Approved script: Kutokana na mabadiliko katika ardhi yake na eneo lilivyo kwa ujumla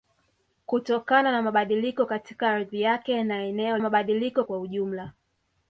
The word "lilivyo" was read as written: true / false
false